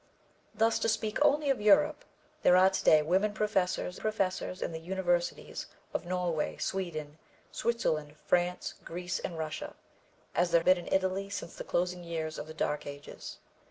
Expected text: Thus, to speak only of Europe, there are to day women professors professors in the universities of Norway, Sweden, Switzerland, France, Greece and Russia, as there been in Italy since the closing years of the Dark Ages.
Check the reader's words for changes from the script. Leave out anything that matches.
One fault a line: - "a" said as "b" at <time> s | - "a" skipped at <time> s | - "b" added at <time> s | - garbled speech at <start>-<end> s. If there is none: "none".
none